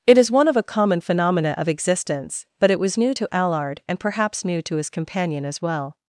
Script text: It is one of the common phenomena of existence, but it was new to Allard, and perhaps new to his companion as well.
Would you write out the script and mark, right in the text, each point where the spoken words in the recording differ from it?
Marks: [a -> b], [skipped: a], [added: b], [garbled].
It is one of [the -> a] common phenomena of existence, but it was new to Allard, and perhaps new to his companion as well.